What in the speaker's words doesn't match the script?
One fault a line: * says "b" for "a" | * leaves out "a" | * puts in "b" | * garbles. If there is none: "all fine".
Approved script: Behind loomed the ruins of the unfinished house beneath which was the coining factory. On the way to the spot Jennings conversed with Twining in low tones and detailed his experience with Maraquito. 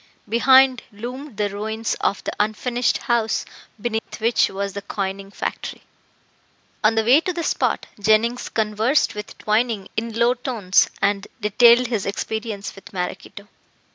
all fine